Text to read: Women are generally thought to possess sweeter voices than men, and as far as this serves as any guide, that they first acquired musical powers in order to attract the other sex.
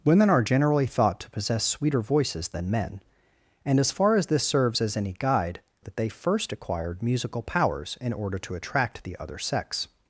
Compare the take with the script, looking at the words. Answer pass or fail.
pass